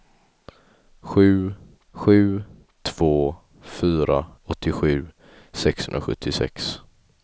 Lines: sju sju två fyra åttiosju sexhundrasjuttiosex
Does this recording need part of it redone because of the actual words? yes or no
no